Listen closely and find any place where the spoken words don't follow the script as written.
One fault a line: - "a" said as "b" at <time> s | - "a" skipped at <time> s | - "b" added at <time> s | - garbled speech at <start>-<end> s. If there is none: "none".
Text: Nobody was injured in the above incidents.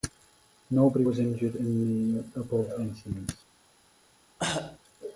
none